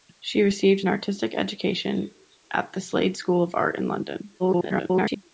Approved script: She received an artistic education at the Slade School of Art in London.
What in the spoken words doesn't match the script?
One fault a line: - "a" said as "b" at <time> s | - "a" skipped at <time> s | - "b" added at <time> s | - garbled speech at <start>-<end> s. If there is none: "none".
- garbled speech at 4.4-5.2 s